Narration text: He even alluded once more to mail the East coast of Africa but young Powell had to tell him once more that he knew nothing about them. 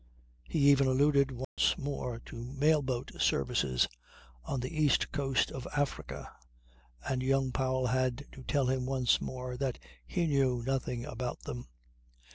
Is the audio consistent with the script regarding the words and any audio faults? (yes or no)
no